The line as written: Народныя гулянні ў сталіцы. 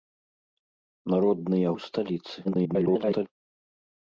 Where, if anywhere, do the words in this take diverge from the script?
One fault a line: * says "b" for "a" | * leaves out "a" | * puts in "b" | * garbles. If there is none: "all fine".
* leaves out "гулянні"
* garbles